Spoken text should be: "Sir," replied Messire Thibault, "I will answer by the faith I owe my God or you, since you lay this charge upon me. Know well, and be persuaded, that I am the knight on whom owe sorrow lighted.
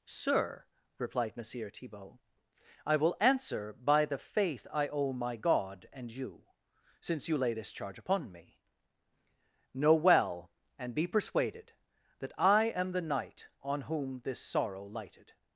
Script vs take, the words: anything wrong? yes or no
yes